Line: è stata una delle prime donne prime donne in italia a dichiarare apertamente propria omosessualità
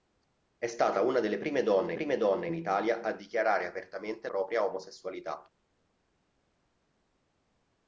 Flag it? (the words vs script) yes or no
no